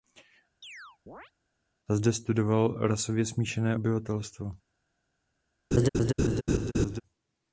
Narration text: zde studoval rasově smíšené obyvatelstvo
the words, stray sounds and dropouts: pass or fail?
fail